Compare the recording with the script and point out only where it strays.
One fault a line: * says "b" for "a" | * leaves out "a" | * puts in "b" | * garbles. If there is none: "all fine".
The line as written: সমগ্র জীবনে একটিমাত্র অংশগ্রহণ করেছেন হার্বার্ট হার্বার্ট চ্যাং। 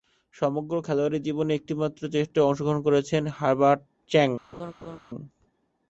* puts in "খেলোয়াড়ী"
* puts in "টেস্টে"
* leaves out "হার্বার্ট"